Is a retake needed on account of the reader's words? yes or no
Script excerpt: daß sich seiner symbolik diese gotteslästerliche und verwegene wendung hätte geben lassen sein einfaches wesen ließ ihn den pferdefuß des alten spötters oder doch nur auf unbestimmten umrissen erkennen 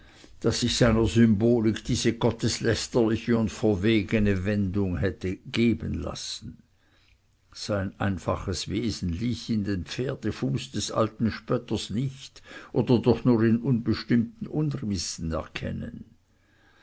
yes